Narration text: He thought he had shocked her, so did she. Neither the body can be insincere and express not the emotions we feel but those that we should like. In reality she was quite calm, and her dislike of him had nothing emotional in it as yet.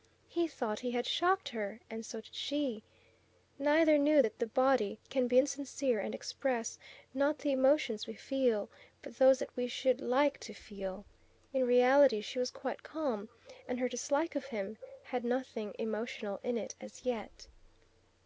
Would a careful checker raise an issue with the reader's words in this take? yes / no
yes